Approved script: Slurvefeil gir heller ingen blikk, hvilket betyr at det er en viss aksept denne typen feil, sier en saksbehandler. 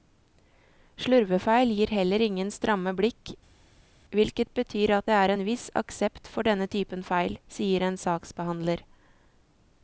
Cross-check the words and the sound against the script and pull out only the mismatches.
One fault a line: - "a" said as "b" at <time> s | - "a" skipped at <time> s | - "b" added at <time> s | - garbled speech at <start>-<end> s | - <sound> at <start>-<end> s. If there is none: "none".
- "stramme" added at 2.5 s
- "for" added at 6.3 s